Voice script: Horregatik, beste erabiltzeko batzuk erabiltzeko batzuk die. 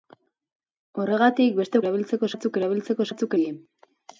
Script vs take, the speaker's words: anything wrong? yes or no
no